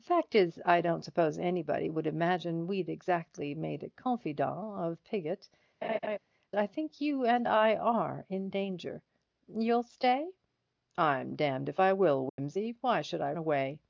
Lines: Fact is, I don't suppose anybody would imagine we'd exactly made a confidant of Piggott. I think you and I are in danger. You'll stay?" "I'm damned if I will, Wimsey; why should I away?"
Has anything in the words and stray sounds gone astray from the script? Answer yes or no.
yes